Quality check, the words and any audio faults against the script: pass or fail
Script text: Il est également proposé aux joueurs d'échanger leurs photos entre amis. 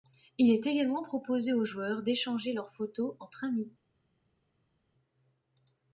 pass